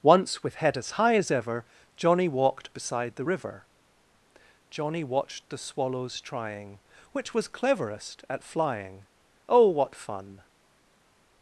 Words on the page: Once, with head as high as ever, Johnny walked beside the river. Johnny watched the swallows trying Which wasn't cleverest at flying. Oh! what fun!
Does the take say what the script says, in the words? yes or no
no